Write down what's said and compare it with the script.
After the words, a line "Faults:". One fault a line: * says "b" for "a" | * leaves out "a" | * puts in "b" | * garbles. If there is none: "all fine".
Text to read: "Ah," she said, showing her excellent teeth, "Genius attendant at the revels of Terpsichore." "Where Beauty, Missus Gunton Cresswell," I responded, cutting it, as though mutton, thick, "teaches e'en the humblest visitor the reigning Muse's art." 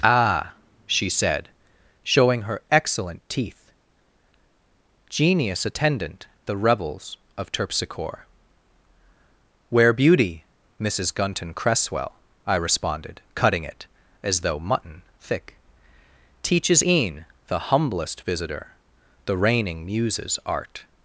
"Ah," she said, showing her excellent teeth, "Genius attendant the revels of Terpsichore." "Where Beauty, Missus Gunton Cresswell," I responded, cutting it, as though mutton, thick, "teaches e'en the humblest visitor the reigning Muse's art."
Faults:
* leaves out "at"